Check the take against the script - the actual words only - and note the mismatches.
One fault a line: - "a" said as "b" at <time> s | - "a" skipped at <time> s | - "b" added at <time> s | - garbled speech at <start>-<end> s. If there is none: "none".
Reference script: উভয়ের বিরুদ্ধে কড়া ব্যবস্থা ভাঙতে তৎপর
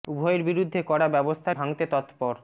none